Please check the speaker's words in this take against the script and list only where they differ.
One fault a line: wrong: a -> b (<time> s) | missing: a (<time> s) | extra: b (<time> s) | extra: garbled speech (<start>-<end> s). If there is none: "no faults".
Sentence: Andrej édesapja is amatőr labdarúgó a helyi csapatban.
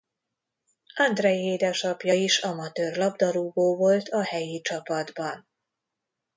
extra: volt (3.8 s)